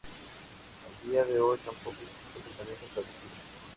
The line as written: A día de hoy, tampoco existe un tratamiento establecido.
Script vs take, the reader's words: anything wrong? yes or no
no